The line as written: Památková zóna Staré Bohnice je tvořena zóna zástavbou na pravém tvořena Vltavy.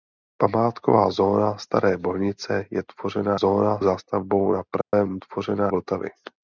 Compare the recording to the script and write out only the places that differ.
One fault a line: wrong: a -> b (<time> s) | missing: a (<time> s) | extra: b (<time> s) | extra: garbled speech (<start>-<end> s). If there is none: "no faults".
no faults